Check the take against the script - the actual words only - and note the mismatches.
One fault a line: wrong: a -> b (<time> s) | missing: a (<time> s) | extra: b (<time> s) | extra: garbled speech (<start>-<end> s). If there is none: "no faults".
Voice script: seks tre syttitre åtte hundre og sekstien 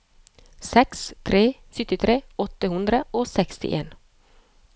no faults